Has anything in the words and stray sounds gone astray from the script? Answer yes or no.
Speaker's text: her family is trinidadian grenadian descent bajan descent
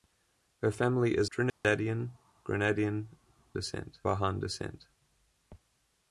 yes